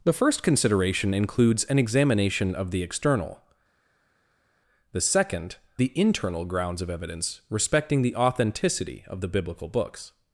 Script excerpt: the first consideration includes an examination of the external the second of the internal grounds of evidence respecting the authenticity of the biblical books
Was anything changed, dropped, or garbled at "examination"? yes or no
no